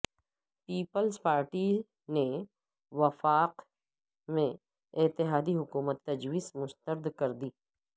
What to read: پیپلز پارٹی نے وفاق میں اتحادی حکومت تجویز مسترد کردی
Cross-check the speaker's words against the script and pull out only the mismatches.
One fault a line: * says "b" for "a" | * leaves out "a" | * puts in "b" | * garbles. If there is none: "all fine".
all fine